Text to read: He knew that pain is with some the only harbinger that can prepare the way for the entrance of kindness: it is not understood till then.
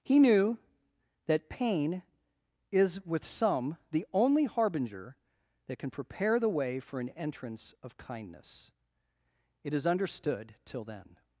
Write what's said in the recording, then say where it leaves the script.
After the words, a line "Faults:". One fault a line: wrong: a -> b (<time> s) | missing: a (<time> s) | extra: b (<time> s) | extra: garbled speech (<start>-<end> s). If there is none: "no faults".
He knew that pain is with some the only harbinger that can prepare the way for an entrance of kindness: it is understood till then.
Faults:
wrong: the -> an (7.0 s)
missing: not (9.9 s)